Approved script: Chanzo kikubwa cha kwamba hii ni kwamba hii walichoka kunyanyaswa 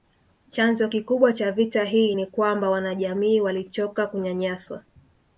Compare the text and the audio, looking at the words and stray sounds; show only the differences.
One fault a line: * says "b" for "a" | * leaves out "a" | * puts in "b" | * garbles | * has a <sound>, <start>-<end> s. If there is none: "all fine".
* says "vita" for "kwamba"
* says "wanajamii" for "hii"